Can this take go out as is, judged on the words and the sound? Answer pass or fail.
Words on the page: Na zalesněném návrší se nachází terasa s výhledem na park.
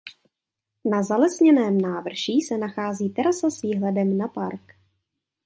pass